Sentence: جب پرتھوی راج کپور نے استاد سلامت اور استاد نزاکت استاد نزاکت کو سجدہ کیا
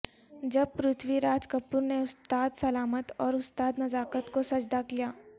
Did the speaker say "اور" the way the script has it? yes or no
yes